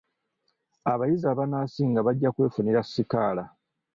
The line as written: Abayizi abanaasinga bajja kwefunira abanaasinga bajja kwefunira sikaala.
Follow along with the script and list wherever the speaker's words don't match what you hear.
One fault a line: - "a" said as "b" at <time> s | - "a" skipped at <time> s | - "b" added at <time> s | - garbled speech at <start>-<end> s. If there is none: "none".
- "abanaasinga bajja kwefunira" skipped at 2.8 s